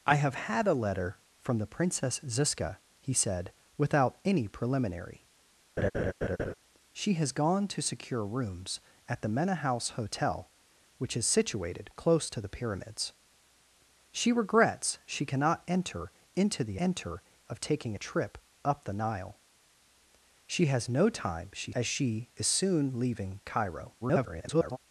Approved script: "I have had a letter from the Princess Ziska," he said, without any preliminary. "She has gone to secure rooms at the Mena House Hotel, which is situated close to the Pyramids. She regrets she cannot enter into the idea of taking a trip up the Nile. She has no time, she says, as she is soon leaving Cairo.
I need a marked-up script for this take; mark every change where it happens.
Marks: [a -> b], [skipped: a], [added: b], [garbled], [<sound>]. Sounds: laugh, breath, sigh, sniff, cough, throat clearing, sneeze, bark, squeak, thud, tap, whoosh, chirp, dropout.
"I have had a letter from the Princess Ziska," he said, without any preliminary. [laugh] "She has gone to secure rooms at the Mena House Hotel, which is situated close to the Pyramids. She regrets she cannot enter into the [idea -> enter] of taking a trip up the Nile. She has no time, she [skipped: says,] as she is soon leaving Cairo. [garbled]